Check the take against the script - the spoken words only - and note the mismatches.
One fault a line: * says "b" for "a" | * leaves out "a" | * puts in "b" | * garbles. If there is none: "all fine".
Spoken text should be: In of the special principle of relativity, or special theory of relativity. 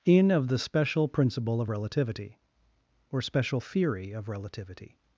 all fine